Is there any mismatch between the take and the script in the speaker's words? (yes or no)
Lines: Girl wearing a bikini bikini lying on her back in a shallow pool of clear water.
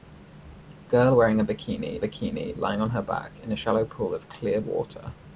no